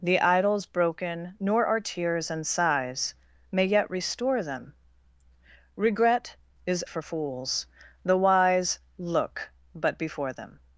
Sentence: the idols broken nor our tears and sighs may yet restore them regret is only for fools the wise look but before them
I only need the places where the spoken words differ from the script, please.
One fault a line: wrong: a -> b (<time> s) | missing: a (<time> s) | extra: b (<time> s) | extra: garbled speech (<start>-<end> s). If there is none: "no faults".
missing: only (6.8 s)